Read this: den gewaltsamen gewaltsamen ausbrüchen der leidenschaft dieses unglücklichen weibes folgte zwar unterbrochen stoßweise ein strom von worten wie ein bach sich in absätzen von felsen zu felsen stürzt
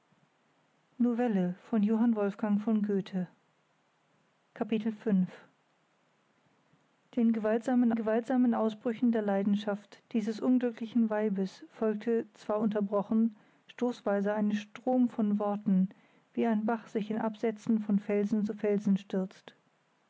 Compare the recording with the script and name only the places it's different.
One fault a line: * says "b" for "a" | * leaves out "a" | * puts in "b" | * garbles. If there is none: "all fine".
all fine